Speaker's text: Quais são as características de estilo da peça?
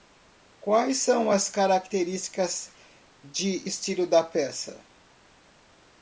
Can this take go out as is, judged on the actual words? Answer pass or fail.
pass